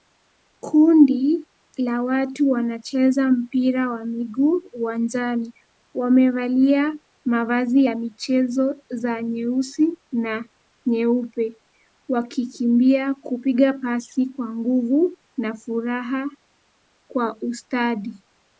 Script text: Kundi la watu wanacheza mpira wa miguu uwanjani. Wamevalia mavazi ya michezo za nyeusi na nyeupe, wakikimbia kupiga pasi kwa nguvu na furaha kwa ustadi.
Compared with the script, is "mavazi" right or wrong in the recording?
right